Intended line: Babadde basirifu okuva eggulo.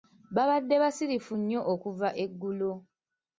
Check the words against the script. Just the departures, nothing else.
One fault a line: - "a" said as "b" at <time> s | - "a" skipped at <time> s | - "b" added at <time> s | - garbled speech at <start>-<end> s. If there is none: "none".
- "nnyo" added at 1.4 s